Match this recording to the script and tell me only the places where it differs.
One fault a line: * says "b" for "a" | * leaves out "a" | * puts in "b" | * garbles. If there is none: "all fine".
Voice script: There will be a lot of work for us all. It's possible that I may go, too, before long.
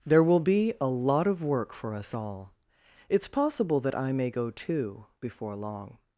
all fine